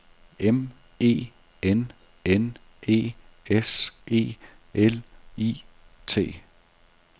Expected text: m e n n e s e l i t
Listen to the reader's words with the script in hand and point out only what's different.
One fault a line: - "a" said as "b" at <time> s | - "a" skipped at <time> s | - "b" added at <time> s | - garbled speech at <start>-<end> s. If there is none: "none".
none